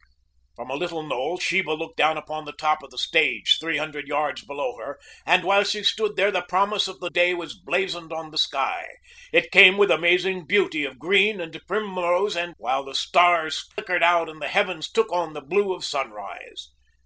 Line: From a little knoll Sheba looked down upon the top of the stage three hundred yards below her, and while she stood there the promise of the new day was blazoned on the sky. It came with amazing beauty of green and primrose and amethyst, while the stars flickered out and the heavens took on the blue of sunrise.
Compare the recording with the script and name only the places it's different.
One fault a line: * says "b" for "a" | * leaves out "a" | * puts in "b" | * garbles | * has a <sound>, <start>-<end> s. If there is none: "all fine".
* leaves out "new"
* leaves out "amethyst"
* has a dropout, 13.7-13.8 s